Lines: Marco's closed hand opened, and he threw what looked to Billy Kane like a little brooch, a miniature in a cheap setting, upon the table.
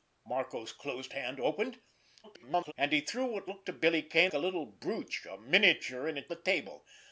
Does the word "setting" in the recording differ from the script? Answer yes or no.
yes